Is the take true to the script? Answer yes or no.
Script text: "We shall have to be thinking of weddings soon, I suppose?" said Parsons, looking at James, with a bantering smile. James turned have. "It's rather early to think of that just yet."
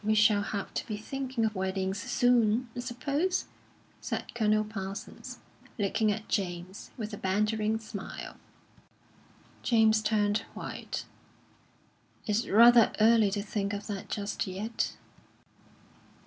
no